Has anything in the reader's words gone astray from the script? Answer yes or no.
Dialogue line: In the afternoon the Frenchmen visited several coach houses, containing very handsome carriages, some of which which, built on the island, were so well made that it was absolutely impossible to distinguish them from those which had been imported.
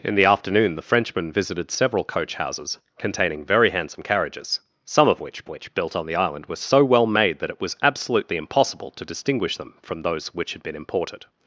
no